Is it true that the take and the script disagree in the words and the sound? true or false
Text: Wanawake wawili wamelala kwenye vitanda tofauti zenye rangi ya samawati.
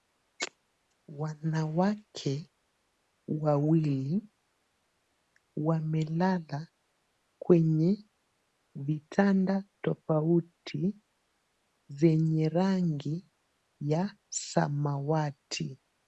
false